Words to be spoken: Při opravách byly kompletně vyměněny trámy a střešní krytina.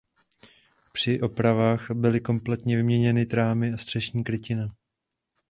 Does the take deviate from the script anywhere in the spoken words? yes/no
no